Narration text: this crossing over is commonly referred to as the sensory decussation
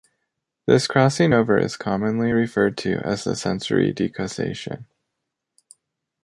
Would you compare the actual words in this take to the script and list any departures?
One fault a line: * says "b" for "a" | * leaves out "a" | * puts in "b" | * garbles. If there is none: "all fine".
all fine